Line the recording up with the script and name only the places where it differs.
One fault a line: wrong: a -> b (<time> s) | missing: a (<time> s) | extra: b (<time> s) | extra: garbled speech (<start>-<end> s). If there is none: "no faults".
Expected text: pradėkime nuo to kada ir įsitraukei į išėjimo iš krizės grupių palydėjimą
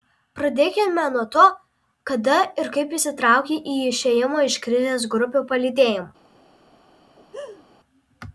extra: kaip (2.8 s)